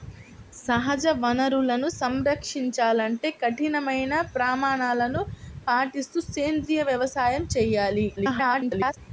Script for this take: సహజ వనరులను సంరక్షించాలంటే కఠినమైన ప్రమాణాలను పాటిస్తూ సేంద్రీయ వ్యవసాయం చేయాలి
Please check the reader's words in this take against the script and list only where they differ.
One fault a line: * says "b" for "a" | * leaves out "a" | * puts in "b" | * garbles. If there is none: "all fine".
* garbles